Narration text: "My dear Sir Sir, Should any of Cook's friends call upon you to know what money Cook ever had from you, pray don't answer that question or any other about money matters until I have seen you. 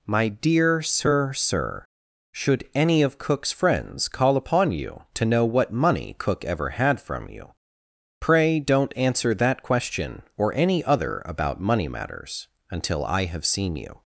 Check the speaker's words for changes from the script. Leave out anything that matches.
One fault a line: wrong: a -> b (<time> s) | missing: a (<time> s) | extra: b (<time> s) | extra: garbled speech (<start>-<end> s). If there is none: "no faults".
no faults